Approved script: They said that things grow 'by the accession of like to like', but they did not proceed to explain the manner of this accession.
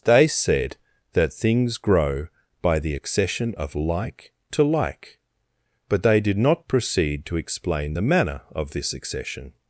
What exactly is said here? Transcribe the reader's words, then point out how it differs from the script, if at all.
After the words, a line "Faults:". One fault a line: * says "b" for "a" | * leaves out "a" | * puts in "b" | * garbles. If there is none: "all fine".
They said that things grow 'by the accession of like to like', but they did not proceed to explain the manner of this accession.
Faults:
all fine